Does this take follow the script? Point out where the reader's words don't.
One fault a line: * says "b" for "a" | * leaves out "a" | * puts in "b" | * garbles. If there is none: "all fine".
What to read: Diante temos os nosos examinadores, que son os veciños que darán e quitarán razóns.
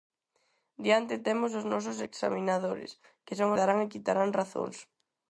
* leaves out "os veciños que"